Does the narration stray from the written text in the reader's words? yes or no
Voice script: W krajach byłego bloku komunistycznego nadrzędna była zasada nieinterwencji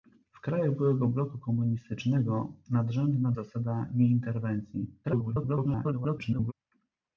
yes